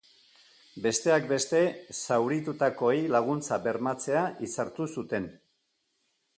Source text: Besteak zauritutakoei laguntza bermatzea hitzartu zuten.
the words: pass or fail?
fail